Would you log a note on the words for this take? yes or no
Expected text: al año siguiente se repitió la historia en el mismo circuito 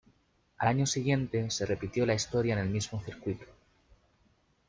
no